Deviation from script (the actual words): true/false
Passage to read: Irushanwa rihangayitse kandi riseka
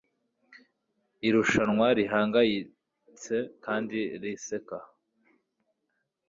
false